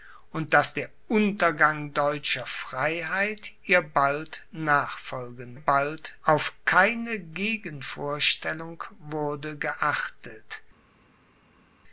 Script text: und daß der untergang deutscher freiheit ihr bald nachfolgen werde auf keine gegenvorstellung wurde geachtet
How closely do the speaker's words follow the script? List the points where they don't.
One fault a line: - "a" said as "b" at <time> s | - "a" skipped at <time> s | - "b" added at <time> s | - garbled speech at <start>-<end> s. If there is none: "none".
- "werde" said as "bald" at 5.5 s